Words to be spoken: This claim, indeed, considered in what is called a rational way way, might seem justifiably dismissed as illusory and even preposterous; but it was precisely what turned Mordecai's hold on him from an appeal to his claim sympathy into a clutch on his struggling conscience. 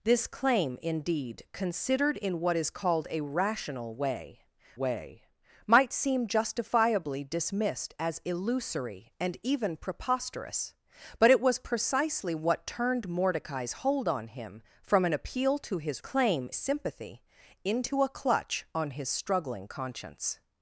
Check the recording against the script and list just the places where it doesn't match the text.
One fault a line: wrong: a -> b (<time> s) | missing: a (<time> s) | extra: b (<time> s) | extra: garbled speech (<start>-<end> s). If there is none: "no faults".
no faults